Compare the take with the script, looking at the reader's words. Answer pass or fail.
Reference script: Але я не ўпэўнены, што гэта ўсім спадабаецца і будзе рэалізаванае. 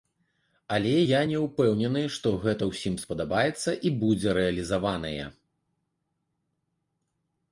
pass